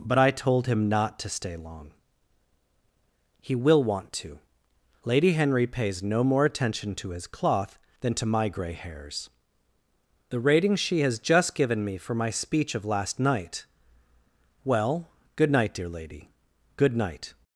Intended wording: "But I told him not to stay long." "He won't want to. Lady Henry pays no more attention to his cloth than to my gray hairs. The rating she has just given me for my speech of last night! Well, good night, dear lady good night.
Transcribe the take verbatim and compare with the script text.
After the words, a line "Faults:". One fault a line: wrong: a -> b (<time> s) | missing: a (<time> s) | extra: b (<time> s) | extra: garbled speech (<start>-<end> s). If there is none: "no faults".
"But I told him not to stay long." "He will want to. Lady Henry pays no more attention to his cloth than to my gray hairs. The rating she has just given me for my speech of last night! Well, good night, dear lady good night.
Faults:
wrong: won't -> will (3.5 s)